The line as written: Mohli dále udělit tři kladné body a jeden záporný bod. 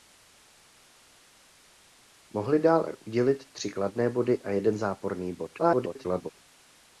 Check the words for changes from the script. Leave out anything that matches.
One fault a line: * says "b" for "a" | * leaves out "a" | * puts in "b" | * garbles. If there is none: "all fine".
* garbles